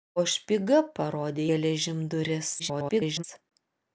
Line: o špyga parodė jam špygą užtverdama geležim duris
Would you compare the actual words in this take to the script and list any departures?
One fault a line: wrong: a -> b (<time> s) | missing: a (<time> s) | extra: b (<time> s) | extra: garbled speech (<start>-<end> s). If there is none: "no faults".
missing: jam špygą užtverdama (1.4 s)
extra: garbled speech (2.6-3.2 s)